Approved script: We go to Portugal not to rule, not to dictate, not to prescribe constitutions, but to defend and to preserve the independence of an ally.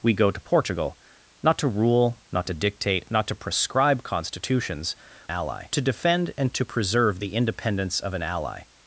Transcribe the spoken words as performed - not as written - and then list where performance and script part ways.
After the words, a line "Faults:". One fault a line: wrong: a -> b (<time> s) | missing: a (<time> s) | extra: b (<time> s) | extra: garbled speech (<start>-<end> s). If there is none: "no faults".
We go to Portugal not to rule, not to dictate, not to prescribe constitutions, ally to defend and to preserve the independence of an ally.
Faults:
wrong: but -> ally (5.3 s)